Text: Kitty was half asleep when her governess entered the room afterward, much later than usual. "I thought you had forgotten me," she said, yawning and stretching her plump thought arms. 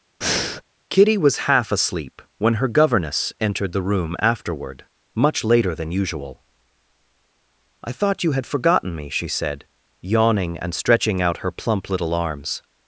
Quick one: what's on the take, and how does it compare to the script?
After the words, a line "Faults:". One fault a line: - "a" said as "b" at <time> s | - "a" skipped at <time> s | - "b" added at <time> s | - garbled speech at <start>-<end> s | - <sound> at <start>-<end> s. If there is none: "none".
Kitty was half asleep when her governess entered the room afterward, much later than usual. "I thought you had forgotten me," she said, yawning and stretching out her plump little arms.
Faults:
- breath at 0.2-0.6 s
- "out" added at 11.2 s
- "thought" said as "little" at 11.9 s